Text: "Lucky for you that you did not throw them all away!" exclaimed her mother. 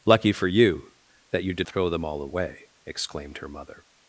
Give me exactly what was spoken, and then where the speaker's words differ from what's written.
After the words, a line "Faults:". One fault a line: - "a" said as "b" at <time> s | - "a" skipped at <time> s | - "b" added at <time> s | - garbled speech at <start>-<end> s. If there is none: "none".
"Lucky for you that you did throw them all away!" exclaimed her mother.
Faults:
- "not" skipped at 1.7 s